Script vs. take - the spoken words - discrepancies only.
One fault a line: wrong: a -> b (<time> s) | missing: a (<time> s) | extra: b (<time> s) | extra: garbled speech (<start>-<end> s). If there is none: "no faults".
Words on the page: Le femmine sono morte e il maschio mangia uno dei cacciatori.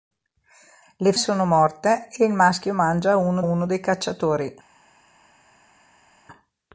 missing: femmine (1.1 s)
extra: uno (3.4 s)